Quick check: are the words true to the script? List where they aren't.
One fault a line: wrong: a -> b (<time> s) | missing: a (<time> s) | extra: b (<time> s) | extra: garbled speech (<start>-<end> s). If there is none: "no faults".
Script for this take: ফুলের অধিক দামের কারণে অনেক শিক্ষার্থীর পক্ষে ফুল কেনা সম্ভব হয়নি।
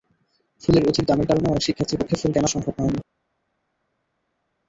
no faults